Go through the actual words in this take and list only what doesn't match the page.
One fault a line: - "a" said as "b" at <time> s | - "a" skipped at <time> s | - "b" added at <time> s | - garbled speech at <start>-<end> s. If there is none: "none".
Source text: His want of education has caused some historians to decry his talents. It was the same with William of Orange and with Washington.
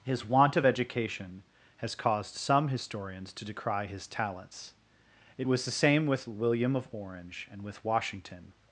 none